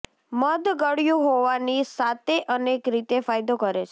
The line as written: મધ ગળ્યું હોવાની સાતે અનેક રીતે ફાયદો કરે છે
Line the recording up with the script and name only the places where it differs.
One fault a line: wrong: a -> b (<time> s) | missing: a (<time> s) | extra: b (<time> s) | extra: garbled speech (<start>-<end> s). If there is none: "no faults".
no faults